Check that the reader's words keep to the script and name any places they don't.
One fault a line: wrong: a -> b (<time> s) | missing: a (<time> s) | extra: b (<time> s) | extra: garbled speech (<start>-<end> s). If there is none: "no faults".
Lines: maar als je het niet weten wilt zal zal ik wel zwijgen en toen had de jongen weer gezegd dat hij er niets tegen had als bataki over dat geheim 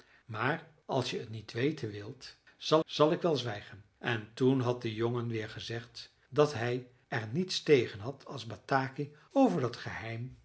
no faults